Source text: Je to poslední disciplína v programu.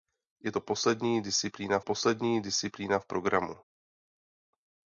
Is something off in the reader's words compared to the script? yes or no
yes